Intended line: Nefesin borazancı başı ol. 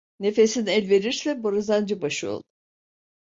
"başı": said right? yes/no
yes